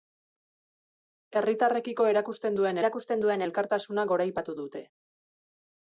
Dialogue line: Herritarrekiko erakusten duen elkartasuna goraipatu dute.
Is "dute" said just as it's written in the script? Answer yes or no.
yes